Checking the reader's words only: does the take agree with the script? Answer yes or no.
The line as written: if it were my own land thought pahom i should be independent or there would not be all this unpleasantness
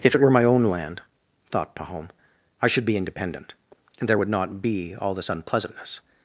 no